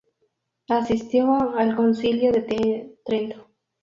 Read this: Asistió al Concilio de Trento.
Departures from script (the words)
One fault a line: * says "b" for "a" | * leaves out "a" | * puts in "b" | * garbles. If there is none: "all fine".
all fine